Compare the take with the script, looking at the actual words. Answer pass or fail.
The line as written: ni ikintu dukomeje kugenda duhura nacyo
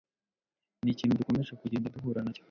pass